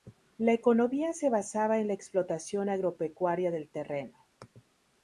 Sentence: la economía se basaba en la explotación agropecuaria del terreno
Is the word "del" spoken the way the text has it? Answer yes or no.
yes